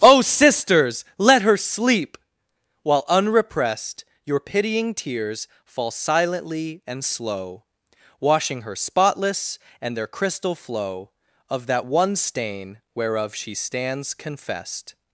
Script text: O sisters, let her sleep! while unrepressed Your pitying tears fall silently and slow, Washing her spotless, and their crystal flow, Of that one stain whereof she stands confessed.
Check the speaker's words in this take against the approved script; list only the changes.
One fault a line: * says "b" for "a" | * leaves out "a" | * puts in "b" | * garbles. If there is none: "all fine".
all fine